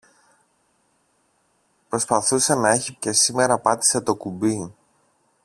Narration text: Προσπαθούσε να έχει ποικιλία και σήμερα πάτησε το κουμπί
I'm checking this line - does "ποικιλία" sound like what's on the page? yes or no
no